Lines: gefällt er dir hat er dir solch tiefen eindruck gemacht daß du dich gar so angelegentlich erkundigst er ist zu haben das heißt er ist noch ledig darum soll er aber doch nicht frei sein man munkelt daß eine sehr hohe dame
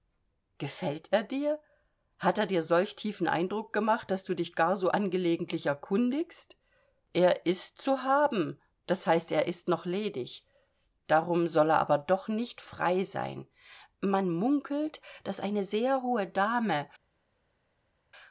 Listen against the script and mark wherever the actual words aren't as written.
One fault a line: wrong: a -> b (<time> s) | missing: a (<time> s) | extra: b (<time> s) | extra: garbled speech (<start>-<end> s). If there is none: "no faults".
no faults